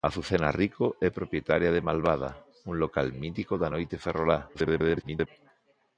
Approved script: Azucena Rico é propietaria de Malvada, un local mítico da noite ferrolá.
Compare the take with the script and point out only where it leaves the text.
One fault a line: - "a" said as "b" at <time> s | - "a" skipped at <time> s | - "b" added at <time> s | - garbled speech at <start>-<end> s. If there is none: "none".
- garbled speech at 4.5-5.3 s